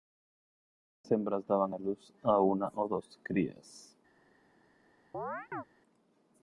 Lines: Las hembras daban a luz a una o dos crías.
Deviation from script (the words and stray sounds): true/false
true